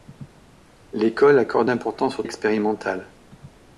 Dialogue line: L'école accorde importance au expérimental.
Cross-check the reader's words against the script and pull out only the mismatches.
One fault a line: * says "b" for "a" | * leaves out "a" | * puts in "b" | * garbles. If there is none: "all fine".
all fine